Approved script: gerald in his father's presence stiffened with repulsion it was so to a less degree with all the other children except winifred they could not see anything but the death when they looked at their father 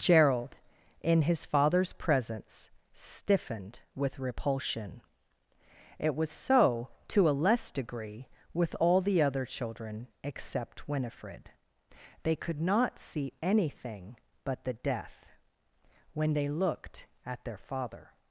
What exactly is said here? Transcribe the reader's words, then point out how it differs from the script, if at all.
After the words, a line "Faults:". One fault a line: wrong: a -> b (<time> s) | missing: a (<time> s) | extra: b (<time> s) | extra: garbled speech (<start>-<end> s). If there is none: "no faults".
gerald in his father's presence stiffened with repulsion it was so to a less degree with all the other children except winifred they could not see anything but the death when they looked at their father
Faults:
no faults